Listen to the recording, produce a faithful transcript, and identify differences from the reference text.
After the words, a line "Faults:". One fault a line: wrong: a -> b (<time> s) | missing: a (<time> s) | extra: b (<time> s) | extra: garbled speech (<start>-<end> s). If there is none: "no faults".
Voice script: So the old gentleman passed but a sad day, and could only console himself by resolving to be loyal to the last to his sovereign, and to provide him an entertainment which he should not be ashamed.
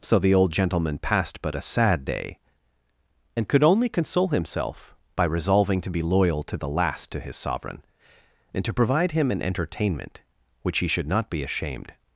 So the old gentleman passed but a sad day, and could only console himself by resolving to be loyal to the last to his sovereign, and to provide him an entertainment which he should not be ashamed.
Faults:
no faults